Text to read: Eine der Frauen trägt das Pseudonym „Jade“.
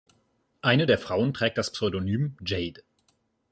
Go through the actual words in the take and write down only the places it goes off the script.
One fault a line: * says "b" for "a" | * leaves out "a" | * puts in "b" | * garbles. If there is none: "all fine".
all fine